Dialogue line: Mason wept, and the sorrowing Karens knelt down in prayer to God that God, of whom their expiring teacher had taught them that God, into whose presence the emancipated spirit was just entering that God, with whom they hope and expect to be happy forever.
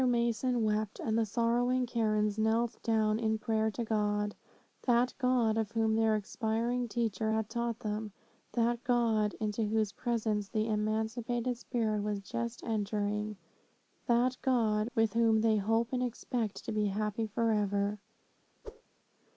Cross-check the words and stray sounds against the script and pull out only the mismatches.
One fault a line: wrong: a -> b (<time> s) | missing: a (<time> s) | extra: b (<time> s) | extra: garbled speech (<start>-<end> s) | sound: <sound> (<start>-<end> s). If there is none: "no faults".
sound: whoosh (18.6-18.8 s)